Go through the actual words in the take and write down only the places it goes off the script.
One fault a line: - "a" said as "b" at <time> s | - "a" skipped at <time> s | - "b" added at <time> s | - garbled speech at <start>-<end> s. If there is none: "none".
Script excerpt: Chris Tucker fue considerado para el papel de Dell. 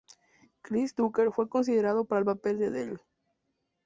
none